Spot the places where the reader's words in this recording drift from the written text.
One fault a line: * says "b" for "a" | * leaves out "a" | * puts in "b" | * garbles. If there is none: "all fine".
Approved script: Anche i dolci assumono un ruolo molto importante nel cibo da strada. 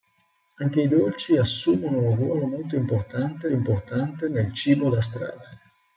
* puts in "importante"